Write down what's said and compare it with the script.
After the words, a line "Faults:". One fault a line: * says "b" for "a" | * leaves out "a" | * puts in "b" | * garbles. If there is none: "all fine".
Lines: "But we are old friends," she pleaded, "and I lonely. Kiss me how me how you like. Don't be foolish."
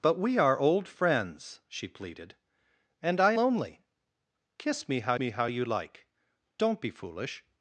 "But we are old friends," she pleaded, "and I lonely. Kiss me how me how you like. Don't be foolish."
Faults:
all fine